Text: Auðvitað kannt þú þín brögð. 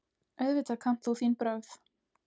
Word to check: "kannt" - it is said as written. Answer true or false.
true